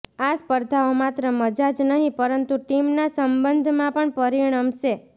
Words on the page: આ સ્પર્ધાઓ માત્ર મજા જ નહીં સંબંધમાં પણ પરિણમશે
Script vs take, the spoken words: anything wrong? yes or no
yes